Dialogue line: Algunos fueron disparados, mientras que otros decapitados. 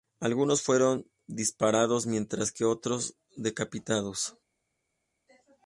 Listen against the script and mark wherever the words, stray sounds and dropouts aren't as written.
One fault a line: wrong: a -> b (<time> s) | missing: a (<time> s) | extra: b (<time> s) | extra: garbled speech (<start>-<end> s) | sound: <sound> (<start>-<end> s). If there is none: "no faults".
no faults